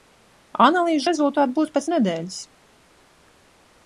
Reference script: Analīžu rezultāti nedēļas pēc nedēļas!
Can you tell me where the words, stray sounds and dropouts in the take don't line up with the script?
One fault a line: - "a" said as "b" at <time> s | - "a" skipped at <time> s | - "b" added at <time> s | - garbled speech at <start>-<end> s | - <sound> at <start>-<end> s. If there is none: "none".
- "nedēļas" said as "būs" at 1.6 s